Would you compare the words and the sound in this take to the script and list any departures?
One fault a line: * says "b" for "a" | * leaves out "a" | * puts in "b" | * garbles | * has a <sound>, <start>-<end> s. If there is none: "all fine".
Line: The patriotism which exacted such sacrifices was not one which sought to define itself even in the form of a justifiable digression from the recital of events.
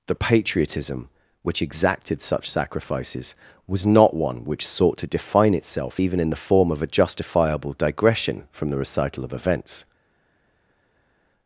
all fine